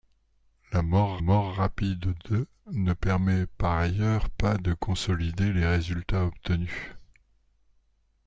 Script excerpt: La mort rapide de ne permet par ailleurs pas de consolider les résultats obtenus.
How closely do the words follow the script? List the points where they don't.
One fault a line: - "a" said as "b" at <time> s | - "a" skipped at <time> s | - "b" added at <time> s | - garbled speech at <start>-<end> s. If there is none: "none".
- "mort" added at 1.2 s